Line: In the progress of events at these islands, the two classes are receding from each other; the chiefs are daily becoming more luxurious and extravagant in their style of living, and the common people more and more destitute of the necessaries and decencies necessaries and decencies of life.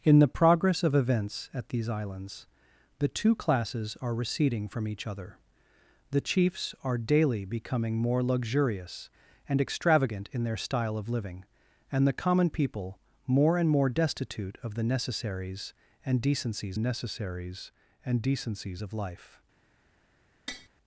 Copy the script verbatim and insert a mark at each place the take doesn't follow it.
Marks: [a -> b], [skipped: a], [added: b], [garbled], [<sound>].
In the progress of events at these islands, the two classes are receding from each other; the chiefs are daily becoming more luxurious and extravagant in their style of living, and the common people more and more destitute of the necessaries and decencies necessaries and decencies of life. [tap]